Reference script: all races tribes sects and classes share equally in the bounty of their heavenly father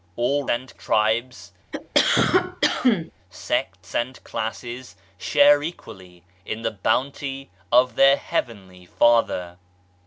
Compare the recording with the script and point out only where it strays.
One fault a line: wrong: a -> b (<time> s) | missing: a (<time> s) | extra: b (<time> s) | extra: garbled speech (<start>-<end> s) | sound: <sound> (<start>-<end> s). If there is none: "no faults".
wrong: races -> and (0.5 s)
sound: cough (1.7-3.1 s)